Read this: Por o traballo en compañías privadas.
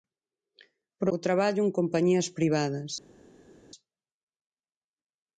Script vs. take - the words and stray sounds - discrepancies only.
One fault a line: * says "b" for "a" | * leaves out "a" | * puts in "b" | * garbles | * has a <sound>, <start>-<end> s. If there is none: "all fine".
all fine